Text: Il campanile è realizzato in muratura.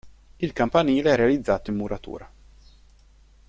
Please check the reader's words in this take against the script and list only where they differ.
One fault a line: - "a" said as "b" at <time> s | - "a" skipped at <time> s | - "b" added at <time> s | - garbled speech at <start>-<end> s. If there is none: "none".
none